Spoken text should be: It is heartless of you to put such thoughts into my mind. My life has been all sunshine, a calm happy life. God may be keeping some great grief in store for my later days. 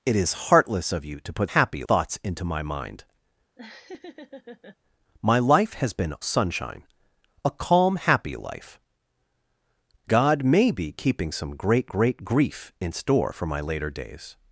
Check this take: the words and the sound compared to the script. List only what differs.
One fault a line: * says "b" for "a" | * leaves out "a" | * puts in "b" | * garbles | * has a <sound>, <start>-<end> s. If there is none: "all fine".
* says "happy" for "such"
* has a laugh, 3.6-4.8 s
* leaves out "all"
* puts in "great"